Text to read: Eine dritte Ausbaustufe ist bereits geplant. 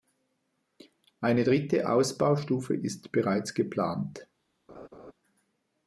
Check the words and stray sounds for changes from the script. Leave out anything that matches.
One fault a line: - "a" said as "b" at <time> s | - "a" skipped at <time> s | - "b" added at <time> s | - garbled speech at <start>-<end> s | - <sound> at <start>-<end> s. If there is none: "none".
- laugh at 4.7-5.1 s